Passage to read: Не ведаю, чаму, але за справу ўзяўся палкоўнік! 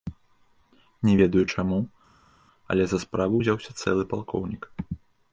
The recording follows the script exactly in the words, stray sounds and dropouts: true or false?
false